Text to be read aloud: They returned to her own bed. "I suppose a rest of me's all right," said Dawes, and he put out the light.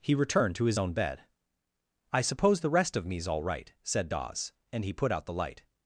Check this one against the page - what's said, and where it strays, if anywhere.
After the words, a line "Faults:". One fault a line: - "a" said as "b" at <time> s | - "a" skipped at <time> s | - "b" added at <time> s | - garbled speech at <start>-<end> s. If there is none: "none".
He returned to his own bed. "I suppose the rest of me's all right," said Dawes, and he put out the light.
Faults:
- "They" said as "He" at 0.0 s
- "her" said as "his" at 0.7 s
- "a" said as "the" at 2.6 s